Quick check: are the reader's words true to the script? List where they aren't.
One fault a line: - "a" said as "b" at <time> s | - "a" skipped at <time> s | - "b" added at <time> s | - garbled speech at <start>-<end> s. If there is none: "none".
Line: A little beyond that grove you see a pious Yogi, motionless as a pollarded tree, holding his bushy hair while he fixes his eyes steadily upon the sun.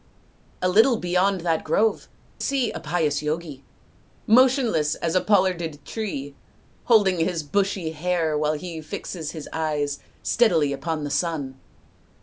- "you" skipped at 2.1 s